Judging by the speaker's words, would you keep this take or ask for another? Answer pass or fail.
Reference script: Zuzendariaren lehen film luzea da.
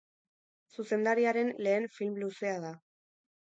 pass